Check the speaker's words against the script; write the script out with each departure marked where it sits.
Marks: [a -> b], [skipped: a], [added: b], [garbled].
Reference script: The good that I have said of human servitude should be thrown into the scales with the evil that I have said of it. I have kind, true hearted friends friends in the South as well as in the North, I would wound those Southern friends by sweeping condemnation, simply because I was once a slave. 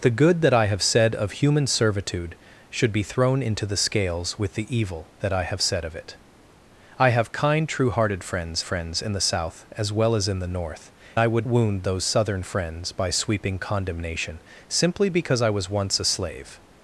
The good that I have said of human servitude should be thrown into the scales with the evil that I have said of it. I have kind, true hearted friends friends in the South as well as in the North, I would wound those Southern friends by sweeping condemnation, simply because I was once a slave.